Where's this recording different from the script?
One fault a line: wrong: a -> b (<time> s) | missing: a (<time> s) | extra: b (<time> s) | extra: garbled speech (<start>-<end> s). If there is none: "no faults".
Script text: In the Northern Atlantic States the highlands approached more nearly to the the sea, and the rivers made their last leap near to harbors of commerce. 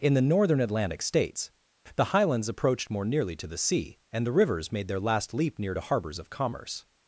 missing: the (3.6 s)